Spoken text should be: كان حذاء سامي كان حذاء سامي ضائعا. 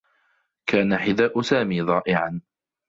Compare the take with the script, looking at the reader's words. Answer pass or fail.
fail